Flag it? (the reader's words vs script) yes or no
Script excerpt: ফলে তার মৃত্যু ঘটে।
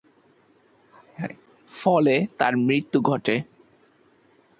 no